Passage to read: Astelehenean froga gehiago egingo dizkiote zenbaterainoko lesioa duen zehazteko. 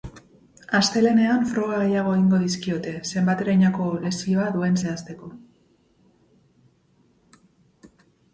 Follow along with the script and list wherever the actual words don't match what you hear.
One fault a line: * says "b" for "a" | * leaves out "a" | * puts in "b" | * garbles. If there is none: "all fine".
all fine